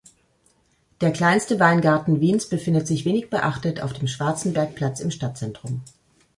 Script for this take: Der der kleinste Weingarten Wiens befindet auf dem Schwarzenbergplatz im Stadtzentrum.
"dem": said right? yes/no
yes